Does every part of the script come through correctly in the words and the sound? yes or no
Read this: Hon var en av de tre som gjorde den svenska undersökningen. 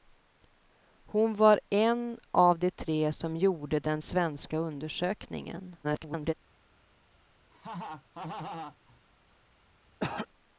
no